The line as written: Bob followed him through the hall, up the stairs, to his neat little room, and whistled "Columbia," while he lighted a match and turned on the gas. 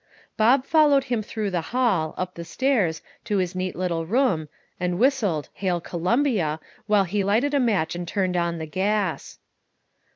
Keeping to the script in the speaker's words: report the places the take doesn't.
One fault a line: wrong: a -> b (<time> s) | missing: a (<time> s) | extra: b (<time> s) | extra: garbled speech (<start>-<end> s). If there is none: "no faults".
extra: Hail (5.5 s)